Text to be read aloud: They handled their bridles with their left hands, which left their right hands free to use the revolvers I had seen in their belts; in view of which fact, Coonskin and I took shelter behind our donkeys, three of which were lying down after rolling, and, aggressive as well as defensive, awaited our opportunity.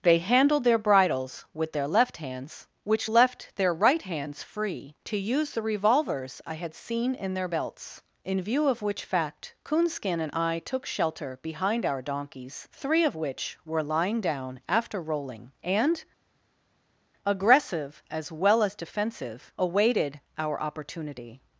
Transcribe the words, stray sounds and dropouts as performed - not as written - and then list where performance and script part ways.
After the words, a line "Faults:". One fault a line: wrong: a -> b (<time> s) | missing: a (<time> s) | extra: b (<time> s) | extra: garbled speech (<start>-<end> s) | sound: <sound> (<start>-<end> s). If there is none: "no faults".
They handled their bridles with their left hands, which left their right hands free to use the revolvers I had seen in their belts; in view of which fact, Coonskin and I took shelter behind our donkeys, three of which were lying down after rolling, and, aggressive as well as defensive, awaited our opportunity.
Faults:
no faults